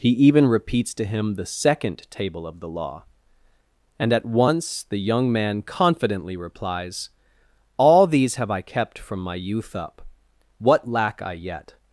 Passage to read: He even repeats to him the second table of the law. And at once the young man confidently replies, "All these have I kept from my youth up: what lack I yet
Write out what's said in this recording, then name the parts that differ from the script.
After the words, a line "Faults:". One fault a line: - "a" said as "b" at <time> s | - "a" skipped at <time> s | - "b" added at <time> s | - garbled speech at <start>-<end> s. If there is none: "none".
He even repeats to him the second table of the law. And at once the young man confidently replies, "All these have I kept from my youth up: what lack I yet
Faults:
none